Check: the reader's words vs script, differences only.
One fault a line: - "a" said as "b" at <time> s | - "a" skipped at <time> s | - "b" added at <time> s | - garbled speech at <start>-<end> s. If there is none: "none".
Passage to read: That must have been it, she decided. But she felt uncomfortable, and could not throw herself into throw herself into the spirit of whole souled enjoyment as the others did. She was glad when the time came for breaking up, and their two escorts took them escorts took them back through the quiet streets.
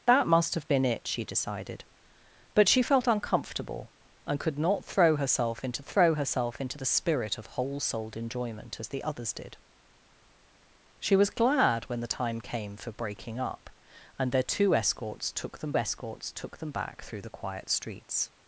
none